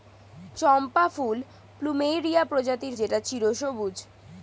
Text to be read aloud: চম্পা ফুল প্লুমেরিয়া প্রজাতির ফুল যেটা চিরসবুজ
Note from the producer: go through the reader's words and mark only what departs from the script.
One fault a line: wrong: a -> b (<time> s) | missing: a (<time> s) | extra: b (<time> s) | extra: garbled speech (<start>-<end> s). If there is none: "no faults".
missing: ফুল (3.0 s)